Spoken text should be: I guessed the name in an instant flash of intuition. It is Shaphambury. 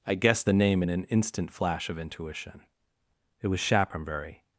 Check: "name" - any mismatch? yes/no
no